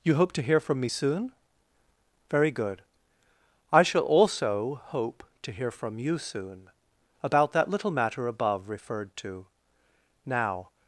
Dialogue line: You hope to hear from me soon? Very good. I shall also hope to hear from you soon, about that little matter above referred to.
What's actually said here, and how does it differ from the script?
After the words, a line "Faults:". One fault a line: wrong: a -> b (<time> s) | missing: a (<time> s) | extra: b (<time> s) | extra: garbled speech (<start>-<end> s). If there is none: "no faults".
You hope to hear from me soon? Very good. I shall also hope to hear from you soon, about that little matter above referred to. Now
Faults:
extra: Now (10.2 s)